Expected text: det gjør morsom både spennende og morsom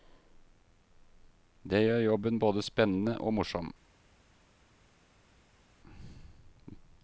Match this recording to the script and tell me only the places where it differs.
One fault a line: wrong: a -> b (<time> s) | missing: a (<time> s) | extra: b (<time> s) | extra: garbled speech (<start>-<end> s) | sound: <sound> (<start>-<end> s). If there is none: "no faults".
wrong: morsom -> jobben (2.0 s)